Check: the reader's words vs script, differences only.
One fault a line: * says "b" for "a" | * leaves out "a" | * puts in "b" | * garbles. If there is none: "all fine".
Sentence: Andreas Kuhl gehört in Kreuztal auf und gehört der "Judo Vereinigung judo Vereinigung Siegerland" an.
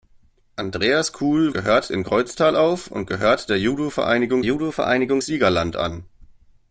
all fine